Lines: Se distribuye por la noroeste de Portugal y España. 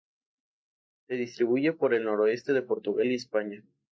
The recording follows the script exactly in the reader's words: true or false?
false